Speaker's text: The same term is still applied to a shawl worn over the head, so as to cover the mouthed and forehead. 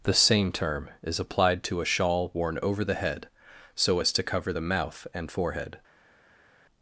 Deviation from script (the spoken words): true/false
true